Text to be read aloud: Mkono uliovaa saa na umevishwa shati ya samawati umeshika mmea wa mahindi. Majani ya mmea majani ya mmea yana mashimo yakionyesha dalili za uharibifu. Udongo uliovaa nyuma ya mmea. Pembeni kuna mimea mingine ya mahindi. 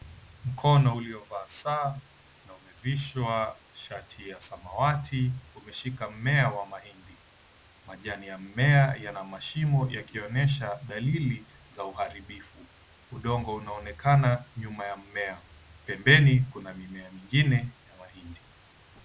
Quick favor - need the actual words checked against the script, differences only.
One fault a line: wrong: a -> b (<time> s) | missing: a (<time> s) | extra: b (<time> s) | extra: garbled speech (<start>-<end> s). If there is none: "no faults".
missing: majani ya mmea (9.0 s)
wrong: uliovaa -> unaonekana (13.6 s)